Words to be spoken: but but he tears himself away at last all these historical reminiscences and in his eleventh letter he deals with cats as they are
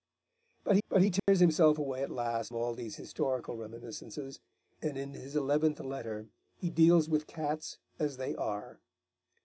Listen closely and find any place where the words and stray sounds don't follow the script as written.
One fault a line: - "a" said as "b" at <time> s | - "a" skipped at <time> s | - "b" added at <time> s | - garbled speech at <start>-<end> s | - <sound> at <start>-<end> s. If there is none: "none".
- dropout at 1.2-1.3 s